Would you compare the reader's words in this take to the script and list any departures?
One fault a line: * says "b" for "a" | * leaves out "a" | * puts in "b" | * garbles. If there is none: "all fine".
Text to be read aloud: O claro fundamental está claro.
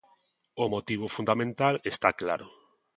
* says "motivo" for "claro"